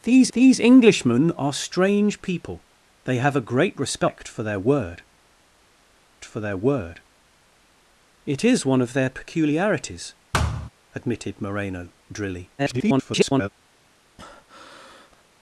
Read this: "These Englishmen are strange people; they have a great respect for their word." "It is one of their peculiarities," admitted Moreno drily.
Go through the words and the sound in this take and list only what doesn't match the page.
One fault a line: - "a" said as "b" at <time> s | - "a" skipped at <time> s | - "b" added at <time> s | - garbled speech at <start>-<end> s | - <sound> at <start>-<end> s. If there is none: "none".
- "these" added at 0.3 s
- "for their word" added at 6.2 s
- thud at 10.3-10.7 s
- garbled speech at 12.6-13.5 s
- breath at 14.2-15.2 s